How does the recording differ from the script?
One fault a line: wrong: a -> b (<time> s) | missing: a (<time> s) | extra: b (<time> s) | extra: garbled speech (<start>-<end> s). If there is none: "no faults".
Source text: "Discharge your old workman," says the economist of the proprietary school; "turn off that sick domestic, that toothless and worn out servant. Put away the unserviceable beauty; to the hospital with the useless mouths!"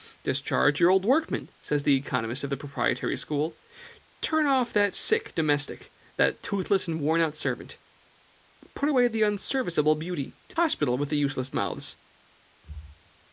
missing: the (10.5 s)